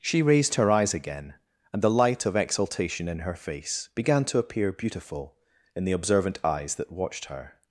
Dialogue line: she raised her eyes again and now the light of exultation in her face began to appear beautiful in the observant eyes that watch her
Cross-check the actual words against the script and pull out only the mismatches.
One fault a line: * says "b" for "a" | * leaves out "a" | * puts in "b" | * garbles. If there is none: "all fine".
* leaves out "now"
* says "watched" for "watch"